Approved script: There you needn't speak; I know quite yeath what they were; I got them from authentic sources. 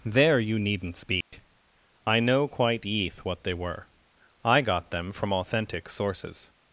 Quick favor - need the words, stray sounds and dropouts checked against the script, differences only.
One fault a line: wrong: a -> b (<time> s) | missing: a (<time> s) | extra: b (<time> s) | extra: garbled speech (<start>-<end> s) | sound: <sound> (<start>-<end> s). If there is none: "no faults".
sound: dropout (1.2-1.3 s)